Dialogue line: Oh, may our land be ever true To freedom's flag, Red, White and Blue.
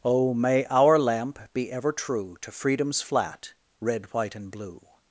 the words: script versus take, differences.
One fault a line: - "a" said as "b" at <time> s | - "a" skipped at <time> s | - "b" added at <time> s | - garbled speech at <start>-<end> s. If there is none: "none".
- "land" said as "lamp" at 1.0 s
- "flag" said as "flat" at 3.0 s